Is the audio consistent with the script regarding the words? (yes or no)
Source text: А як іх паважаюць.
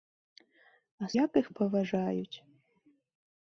yes